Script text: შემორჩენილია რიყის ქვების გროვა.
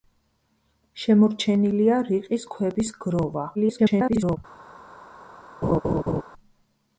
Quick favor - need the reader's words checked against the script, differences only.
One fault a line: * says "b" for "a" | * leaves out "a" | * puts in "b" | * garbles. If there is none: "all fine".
* garbles